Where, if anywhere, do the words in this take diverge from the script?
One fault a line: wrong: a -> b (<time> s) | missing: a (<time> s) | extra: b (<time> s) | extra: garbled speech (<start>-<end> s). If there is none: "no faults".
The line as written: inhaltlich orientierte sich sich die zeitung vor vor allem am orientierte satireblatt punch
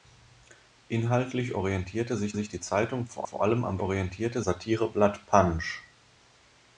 no faults